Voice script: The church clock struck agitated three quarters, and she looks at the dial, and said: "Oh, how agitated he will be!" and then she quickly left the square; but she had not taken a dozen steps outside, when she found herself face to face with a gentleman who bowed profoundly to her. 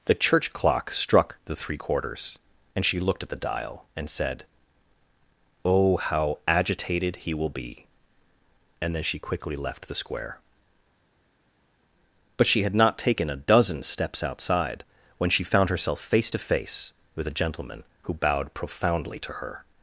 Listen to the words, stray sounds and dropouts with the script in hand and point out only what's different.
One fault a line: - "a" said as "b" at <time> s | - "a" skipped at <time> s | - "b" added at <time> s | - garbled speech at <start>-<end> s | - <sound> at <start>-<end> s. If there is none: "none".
- "agitated" said as "the" at 1.4 s
- "looks" said as "looked" at 3.0 s